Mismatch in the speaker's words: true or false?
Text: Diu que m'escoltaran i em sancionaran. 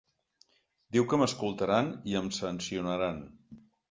false